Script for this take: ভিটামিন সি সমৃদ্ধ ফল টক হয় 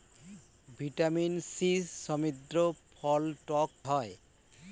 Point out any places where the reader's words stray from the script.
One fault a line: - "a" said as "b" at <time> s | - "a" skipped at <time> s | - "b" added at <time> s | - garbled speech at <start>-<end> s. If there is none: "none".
none